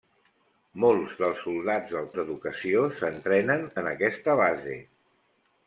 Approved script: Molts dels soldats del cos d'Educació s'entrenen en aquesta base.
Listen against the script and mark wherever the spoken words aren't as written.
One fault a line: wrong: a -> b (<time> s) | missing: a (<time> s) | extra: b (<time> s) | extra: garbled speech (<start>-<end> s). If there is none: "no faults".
missing: cos (2.1 s)